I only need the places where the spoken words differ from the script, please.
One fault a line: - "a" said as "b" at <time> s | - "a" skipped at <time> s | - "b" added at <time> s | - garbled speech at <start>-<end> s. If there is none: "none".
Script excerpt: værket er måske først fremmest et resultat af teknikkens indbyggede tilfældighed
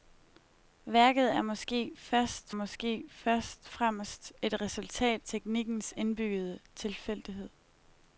- "måske først" added at 2.5 s
- "af" skipped at 5.2 s